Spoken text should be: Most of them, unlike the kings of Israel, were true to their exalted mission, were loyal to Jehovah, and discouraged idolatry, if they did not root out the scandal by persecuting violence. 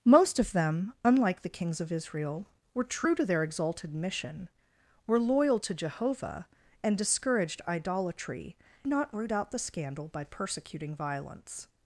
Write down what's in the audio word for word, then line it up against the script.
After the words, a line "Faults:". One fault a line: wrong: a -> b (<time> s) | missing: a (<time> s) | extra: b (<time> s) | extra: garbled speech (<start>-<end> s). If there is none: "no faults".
Most of them, unlike the kings of Israel, were true to their exalted mission, were loyal to Jehovah, and discouraged idolatry, not root out the scandal by persecuting violence.
Faults:
missing: if they did (8.6 s)